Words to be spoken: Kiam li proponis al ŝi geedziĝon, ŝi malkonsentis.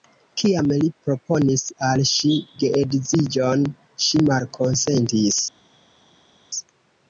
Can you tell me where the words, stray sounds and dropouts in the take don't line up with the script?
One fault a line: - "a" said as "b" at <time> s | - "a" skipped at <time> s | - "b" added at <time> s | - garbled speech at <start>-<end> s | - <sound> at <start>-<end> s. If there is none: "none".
none